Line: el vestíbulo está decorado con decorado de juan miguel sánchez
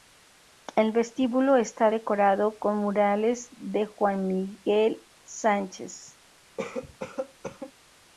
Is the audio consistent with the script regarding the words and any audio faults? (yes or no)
no